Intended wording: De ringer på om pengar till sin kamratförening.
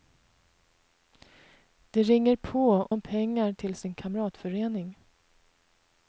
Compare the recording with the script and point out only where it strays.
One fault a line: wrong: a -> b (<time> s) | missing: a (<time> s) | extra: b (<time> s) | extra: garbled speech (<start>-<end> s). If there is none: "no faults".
no faults